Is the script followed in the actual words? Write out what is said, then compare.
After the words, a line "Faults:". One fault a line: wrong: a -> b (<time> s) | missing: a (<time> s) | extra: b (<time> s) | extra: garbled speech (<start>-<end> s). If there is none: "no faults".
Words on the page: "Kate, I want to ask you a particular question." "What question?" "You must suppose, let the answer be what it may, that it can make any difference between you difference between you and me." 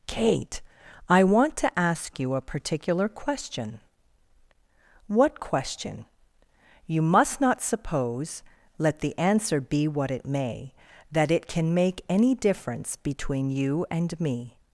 "Kate, I want to ask you a particular question." "What question?" "You must not suppose, let the answer be what it may, that it can make any difference between you and me."
Faults:
extra: not (7.4 s)
missing: difference between you (13.8 s)